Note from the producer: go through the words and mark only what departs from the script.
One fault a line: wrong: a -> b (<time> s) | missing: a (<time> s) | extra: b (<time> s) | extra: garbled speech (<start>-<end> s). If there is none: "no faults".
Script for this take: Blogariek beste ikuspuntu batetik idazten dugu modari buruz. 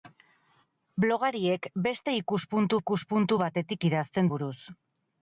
extra: ikuspuntu (2.8 s)
missing: dugu modari (4.3 s)